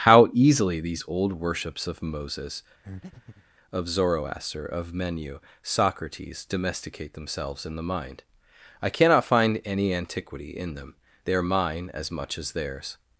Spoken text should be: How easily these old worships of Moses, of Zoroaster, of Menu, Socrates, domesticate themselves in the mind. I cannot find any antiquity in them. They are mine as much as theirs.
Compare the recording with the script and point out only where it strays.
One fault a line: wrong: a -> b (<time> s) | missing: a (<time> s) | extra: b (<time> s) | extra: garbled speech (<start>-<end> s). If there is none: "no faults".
no faults